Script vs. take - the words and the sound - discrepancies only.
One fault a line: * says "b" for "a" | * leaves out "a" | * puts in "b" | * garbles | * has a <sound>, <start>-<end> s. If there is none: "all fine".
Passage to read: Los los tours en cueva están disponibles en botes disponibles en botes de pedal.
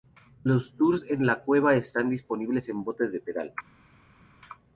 * leaves out "los"
* puts in "la"
* leaves out "disponibles en botes"